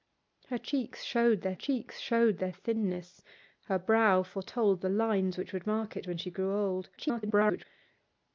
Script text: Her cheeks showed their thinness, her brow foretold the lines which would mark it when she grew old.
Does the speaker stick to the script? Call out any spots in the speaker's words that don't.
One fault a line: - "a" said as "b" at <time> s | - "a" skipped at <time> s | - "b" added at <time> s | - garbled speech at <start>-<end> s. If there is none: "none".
- "cheeks showed their" added at 1.5 s
- garbled speech at 7.0-7.6 s